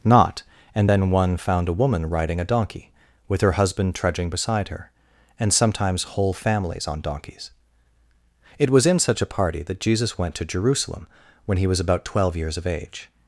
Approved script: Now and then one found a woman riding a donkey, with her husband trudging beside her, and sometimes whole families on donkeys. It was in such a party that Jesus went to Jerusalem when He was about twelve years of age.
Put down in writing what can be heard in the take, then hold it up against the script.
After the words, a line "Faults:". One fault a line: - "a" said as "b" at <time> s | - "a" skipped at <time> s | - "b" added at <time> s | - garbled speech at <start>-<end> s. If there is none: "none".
Not and then one found a woman riding a donkey, with her husband trudging beside her, and sometimes whole families on donkeys. It was in such a party that Jesus went to Jerusalem when He was about twelve years of age.
Faults:
- "Now" said as "Not" at 0.0 s